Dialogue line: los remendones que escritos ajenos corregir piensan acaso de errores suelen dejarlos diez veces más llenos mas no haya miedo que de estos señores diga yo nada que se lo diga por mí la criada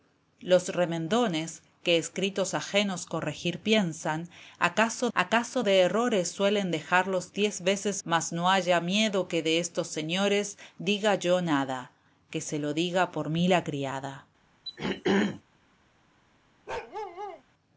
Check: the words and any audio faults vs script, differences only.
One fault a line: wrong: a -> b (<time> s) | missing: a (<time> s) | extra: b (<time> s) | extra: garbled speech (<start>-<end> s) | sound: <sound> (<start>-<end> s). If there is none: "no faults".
extra: acaso (5.1 s)
missing: más llenos (8.0 s)
sound: throat clearing (14.7-15.4 s)
sound: bark (16.7-17.4 s)